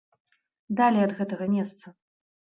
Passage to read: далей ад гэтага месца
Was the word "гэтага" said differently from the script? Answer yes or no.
no